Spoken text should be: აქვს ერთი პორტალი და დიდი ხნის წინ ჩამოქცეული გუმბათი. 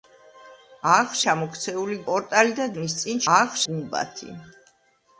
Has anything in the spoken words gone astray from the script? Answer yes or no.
yes